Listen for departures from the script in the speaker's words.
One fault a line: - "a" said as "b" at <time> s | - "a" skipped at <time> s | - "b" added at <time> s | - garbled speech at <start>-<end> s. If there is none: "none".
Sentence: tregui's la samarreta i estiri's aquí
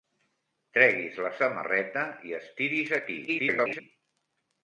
- garbled speech at 3.3-3.8 s